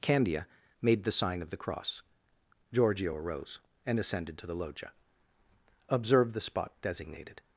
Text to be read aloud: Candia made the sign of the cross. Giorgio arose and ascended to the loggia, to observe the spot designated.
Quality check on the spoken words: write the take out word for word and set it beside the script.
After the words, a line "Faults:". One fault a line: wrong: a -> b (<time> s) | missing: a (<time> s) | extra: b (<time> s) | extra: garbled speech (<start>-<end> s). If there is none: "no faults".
Candia made the sign of the cross. Giorgio arose and ascended to the loggia, observe the spot designated.
Faults:
missing: to (4.9 s)